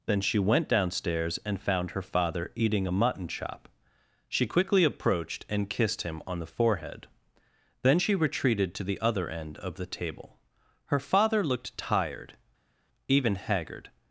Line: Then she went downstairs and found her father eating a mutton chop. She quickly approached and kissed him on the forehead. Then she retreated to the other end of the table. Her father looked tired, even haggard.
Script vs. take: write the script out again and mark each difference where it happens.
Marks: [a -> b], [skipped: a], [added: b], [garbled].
Then she went downstairs and found her father eating a mutton chop. She quickly approached and kissed him on the forehead. Then she retreated to the other end of the table. Her father looked tired, even haggard.